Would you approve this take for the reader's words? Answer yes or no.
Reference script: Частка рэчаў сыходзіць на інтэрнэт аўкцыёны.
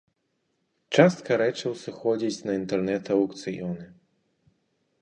yes